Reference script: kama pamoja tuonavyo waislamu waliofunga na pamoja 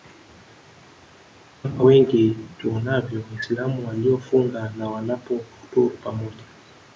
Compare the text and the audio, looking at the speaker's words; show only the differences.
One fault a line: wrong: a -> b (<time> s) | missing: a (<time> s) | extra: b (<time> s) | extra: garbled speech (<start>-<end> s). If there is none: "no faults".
wrong: pamoja -> wengi (1.8 s)
extra: wanapofuturu (4.9 s)